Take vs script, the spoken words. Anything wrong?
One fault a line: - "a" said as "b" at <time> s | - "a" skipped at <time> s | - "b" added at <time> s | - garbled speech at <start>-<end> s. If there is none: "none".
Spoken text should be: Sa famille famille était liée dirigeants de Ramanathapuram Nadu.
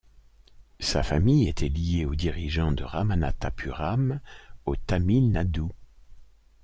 - "famille" skipped at 1.5 s
- "aux" added at 2.1 s
- "au Tamil" added at 4.6 s